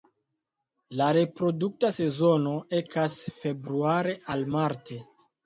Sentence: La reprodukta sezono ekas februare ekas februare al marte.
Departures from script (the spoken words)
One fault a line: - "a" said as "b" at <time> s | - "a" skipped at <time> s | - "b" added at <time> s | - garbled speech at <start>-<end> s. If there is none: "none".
- "ekas februare" skipped at 4.2 s